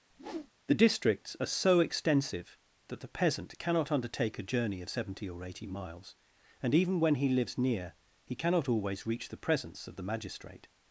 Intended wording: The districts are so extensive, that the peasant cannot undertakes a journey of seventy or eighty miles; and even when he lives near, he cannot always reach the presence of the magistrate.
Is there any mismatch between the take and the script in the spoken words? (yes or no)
yes